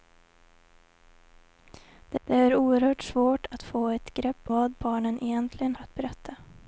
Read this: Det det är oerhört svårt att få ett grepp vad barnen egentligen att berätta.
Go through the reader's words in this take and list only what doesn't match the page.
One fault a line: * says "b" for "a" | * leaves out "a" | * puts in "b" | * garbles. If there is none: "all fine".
all fine